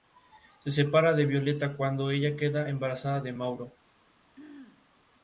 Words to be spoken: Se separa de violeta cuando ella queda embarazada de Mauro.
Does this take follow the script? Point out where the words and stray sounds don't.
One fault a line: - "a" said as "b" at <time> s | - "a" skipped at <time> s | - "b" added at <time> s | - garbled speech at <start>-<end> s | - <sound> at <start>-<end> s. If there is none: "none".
- throat clearing at 4.4-4.9 s